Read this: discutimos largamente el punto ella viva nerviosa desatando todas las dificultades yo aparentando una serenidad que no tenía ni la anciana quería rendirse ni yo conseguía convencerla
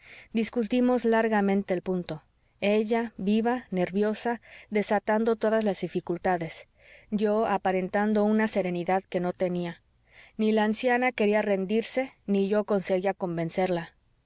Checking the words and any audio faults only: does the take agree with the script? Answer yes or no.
yes